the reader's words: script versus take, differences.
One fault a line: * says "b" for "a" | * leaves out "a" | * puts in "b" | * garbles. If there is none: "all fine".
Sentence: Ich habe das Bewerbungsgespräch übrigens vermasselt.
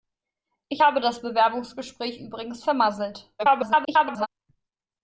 * garbles